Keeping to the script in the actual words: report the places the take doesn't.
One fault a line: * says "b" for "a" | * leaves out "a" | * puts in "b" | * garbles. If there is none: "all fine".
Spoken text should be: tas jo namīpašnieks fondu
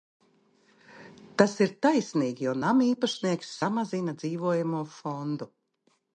* puts in "ir taisnīgi"
* puts in "samazina dzīvojamo"